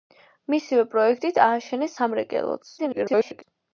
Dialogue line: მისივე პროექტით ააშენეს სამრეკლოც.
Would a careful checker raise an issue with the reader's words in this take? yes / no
yes